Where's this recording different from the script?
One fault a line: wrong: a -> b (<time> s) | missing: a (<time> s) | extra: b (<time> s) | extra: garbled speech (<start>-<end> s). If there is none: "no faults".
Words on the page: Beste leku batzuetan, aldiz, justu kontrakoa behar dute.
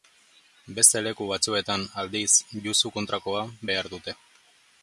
no faults